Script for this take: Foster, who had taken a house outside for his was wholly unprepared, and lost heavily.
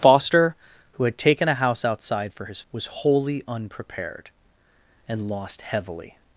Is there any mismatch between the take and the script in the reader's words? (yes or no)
no